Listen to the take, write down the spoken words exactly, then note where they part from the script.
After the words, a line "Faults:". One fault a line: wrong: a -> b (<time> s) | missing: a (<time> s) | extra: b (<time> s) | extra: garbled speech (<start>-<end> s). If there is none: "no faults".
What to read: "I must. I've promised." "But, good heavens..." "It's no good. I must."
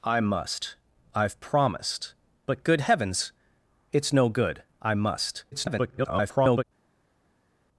"I must. I've promised." "But, good heavens..." "It's no good. I must." [garbled]
Faults:
extra: garbled speech (5.5-6.6 s)